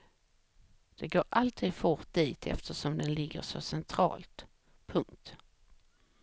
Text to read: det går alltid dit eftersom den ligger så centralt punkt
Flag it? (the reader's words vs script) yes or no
yes